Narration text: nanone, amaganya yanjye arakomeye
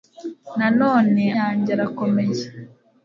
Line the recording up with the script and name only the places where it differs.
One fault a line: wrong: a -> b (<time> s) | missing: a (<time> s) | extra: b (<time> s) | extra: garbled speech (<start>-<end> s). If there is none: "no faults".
missing: amaganya (1.2 s)